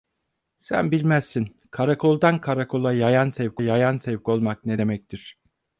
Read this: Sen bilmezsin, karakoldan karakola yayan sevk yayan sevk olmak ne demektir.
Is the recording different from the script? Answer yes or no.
no